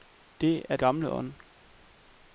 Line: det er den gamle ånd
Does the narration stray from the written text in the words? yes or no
yes